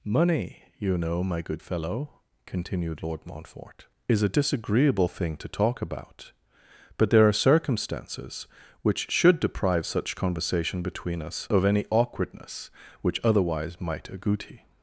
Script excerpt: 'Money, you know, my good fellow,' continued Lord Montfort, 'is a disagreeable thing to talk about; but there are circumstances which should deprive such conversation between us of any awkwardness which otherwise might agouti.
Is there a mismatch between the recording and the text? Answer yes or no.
no